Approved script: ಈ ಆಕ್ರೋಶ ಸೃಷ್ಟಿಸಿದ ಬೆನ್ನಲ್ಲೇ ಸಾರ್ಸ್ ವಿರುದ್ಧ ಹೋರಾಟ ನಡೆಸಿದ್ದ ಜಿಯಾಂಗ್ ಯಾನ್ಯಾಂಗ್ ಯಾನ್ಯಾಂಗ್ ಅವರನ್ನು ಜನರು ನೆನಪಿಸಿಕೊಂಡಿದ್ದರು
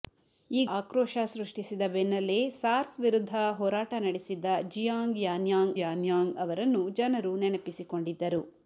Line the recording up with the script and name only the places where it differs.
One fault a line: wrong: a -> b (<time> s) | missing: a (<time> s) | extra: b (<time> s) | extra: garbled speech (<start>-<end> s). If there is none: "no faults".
no faults